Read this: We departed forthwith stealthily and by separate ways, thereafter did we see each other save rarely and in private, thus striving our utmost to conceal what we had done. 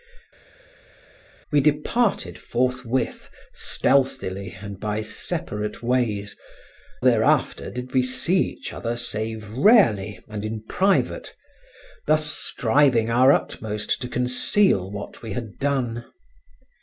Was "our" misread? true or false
false